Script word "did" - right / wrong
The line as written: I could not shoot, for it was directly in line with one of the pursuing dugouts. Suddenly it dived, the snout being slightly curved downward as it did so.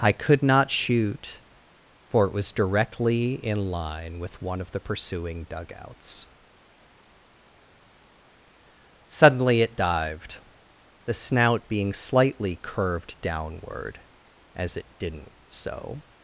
wrong